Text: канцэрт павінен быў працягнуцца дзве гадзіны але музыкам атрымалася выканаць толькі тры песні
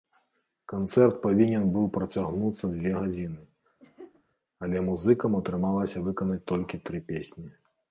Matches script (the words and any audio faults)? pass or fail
fail